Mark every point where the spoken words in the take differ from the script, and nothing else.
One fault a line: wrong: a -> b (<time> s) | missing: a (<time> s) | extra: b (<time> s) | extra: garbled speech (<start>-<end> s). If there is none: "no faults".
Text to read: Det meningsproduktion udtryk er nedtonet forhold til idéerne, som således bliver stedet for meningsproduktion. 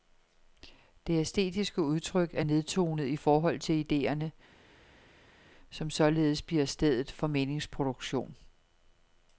wrong: meningsproduktion -> æstetiske (1.2 s)
extra: i (3.1 s)